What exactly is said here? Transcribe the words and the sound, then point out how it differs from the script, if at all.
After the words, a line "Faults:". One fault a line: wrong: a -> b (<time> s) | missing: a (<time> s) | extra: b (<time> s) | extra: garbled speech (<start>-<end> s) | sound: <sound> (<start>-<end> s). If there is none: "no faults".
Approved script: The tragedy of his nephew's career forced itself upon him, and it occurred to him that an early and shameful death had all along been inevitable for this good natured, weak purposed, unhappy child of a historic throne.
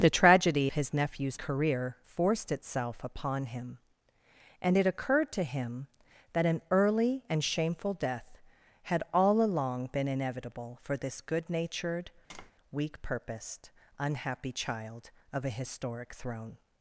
The tragedy his nephew's career forced itself upon him, and it occurred to him that an early and shameful death had all along been inevitable for this good natured, weak purposed, unhappy child of a historic throne.
Faults:
missing: of (0.7 s)
sound: tap (12.3-12.5 s)